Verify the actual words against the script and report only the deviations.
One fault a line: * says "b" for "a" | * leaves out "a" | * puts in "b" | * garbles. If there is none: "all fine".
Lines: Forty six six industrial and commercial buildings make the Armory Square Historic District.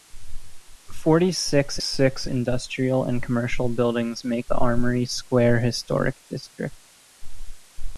all fine